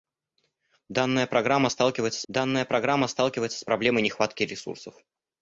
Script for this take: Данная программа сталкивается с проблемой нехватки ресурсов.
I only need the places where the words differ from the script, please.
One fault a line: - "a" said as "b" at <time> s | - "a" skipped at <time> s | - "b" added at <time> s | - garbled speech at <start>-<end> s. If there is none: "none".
- "данная программа сталкивается" added at 2.3 s